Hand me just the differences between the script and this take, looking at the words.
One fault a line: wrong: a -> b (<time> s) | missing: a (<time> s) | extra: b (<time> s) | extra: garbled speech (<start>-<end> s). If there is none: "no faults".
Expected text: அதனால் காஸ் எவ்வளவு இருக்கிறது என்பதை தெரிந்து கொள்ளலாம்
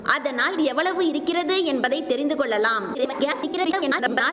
missing: காஸ் (0.6 s)
extra: garbled speech (2.9-4.3 s)